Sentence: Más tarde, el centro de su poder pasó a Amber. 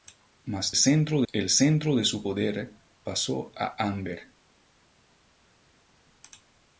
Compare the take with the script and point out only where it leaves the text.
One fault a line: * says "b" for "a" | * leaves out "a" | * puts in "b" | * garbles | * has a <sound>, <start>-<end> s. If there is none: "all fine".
* says "centro" for "tarde"